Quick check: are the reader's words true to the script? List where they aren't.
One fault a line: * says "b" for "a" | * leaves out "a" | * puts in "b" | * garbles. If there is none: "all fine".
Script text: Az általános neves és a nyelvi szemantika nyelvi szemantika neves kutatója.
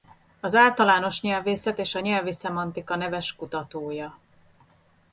* says "nyelvészet" for "neves"
* leaves out "nyelvi szemantika"